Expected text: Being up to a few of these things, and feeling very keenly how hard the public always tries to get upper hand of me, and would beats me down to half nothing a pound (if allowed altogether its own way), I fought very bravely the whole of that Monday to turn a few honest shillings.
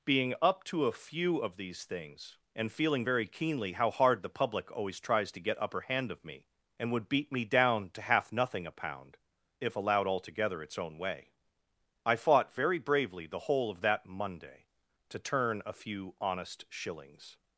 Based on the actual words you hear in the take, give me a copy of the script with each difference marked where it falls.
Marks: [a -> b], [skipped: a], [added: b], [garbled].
Being up to a few of these things, and feeling very keenly how hard the public always tries to get upper hand of me, and would [beats -> beat] me down to half nothing a pound (if allowed altogether its own way), I fought very bravely the whole of that Monday to turn a few honest shillings.